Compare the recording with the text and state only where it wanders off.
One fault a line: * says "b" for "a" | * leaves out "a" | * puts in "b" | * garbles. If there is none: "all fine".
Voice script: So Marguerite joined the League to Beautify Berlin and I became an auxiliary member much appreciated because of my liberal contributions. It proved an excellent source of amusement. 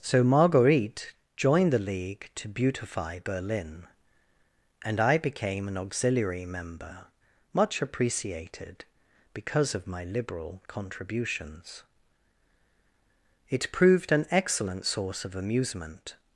all fine